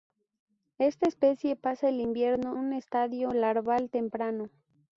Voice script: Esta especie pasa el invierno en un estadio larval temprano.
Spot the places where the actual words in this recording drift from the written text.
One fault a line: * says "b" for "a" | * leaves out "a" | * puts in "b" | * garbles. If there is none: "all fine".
* leaves out "en"